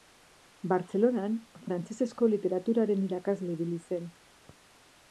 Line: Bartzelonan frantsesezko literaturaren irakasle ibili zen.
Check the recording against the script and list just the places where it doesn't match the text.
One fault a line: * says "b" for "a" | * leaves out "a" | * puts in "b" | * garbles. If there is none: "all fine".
all fine